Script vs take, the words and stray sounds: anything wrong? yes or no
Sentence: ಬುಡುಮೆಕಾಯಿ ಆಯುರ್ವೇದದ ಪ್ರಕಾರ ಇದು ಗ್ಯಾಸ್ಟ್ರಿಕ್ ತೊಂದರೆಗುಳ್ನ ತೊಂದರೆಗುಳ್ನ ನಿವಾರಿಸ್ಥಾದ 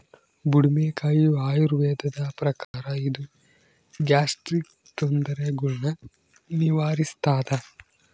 yes